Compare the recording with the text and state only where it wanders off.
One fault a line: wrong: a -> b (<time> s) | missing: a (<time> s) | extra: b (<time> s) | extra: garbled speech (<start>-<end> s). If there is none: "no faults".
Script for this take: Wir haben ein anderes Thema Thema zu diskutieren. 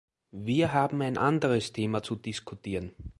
missing: Thema (2.0 s)